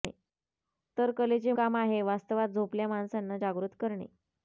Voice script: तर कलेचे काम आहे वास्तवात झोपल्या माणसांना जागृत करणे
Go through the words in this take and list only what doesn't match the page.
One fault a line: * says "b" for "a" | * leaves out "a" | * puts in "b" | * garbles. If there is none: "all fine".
all fine